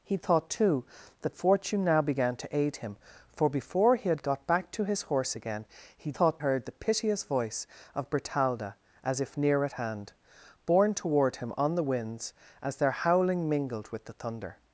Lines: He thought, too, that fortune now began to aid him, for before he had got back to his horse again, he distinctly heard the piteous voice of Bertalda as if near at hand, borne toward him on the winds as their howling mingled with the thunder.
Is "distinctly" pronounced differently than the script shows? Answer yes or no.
yes